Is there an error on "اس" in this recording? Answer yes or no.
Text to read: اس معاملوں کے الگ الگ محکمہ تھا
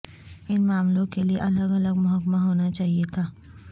yes